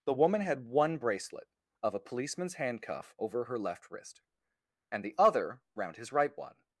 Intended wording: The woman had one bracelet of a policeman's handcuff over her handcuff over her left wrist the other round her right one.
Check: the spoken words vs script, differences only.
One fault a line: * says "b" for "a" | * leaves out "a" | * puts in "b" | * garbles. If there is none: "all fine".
* leaves out "handcuff over her"
* puts in "and"
* says "his" for "her"